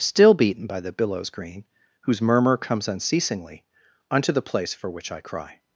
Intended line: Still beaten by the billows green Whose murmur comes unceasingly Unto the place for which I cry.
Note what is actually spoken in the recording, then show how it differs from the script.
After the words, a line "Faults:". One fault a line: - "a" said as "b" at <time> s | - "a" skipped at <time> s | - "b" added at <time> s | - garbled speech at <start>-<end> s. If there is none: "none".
Still beaten by the billows green Whose murmur comes unceasingly Unto the place for which I cry.
Faults:
none